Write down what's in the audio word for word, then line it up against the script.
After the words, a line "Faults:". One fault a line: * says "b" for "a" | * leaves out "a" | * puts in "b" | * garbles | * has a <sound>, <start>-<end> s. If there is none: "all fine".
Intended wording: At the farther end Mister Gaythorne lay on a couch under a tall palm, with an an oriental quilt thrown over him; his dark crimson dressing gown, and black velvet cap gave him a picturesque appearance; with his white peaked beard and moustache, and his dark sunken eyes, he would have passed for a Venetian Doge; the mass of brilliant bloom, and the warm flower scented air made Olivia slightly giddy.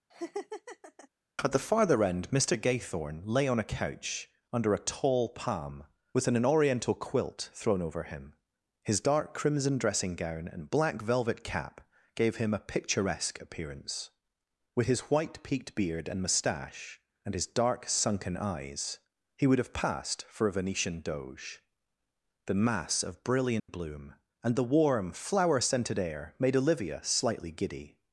At the farther end Mister Gaythorne lay on a couch under a tall palm, with an an oriental quilt thrown over him; his dark crimson dressing gown, and black velvet cap gave him a picturesque appearance; with his white peaked beard and moustache, and his dark sunken eyes, he would have passed for a Venetian Doge; the mass of brilliant bloom, and the warm flower scented air made Olivia slightly giddy.
Faults:
* has a laugh, 0.1-1.1 s
* has a dropout, 23.6-23.7 s